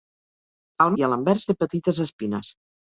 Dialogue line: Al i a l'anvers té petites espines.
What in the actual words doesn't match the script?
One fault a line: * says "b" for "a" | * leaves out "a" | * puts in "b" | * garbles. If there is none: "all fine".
all fine